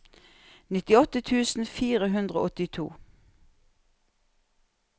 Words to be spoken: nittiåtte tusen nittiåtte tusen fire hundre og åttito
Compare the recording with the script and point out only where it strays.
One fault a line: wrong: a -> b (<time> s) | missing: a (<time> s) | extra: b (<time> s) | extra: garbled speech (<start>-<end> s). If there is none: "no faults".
missing: nittiåtte tusen (1.7 s)